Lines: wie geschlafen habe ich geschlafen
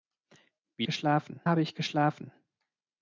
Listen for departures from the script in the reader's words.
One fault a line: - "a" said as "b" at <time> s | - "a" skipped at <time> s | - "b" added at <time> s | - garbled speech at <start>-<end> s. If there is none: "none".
none